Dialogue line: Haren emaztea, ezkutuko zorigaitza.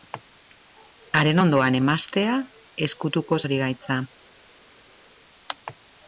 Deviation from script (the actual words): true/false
true